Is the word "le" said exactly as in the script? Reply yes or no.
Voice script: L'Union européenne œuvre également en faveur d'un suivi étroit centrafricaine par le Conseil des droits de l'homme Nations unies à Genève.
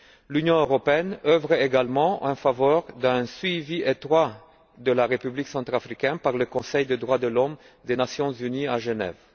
yes